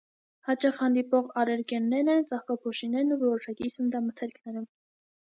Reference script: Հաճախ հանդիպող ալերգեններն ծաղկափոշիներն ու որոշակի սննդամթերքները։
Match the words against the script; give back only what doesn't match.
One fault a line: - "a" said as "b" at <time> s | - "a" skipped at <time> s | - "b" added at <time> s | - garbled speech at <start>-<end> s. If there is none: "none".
- "են" added at 2.1 s